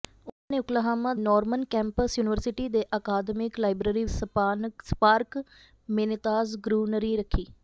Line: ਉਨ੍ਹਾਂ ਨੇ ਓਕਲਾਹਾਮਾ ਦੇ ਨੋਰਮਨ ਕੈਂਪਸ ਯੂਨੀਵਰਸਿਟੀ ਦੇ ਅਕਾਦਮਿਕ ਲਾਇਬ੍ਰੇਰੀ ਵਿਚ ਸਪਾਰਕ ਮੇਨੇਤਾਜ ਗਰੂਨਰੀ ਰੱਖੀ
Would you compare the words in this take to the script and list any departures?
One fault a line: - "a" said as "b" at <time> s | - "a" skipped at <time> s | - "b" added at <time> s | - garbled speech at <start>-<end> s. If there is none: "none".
- "ਦੇ" skipped at 1.1 s
- "ਵਿਚ" skipped at 4.0 s